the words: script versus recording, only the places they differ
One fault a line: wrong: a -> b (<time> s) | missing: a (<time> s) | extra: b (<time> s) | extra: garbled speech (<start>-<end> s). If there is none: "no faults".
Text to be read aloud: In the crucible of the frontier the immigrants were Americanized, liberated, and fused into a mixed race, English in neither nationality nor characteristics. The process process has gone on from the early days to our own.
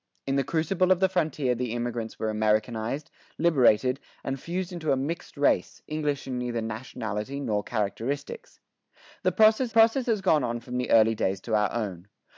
no faults